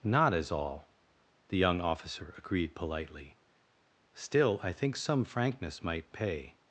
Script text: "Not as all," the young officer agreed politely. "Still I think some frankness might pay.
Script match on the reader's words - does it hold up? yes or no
yes